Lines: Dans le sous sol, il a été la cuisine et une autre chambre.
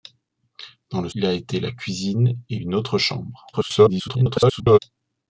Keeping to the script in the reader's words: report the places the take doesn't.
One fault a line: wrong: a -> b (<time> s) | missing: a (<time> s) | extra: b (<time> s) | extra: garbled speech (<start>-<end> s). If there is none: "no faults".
missing: sous sol (1.1 s)
extra: garbled speech (3.5-4.8 s)